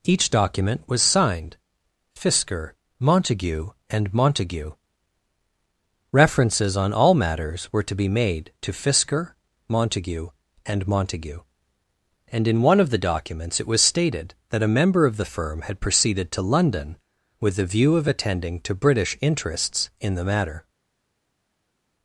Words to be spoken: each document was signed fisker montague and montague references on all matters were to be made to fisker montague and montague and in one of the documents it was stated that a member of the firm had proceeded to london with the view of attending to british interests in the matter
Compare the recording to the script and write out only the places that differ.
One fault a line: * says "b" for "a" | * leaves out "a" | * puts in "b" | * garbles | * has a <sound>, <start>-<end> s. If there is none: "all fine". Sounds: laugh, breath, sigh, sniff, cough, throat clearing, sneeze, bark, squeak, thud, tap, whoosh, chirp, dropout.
all fine